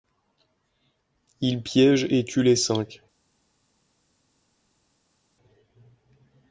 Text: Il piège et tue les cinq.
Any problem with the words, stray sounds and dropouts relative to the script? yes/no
no